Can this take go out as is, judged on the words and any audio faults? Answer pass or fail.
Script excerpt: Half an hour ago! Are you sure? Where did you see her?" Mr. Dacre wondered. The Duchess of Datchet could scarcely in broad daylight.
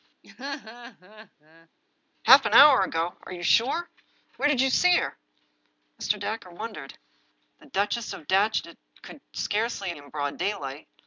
fail